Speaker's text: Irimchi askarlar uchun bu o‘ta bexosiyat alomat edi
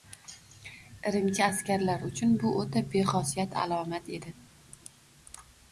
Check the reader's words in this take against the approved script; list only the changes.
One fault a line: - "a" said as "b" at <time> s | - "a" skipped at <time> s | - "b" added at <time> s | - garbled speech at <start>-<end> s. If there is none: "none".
none